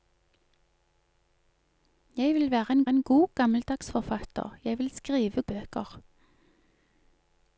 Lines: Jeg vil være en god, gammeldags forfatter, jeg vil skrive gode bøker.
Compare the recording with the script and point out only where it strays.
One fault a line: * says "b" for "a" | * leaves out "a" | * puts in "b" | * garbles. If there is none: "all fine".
* puts in "en"
* leaves out "gode"